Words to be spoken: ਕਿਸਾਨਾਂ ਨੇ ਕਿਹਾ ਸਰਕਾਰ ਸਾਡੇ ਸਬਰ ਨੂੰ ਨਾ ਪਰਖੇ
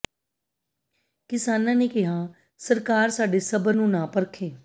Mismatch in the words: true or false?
false